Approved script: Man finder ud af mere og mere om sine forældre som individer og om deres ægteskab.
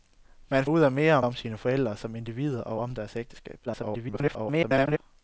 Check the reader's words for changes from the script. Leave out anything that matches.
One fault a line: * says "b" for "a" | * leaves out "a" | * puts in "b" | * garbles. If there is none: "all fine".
* leaves out "finder"
* leaves out "mere"
* garbles